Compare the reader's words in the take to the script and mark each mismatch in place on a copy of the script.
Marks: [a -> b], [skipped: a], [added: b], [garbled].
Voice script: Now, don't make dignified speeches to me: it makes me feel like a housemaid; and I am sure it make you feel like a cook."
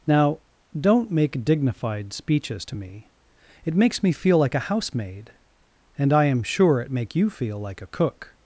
Now, don't make dignified speeches to me: it makes me feel like a housemaid; and I am sure it make you feel like a cook."